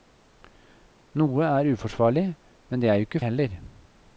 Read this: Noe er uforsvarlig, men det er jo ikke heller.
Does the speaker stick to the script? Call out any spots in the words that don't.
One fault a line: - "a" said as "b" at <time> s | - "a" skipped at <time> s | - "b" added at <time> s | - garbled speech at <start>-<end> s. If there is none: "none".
none